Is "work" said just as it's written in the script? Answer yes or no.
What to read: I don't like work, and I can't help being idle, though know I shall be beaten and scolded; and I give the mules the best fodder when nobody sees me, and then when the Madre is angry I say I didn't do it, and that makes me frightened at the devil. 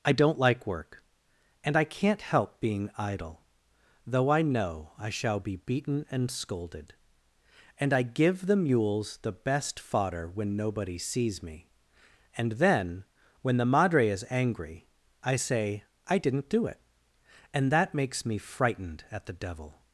yes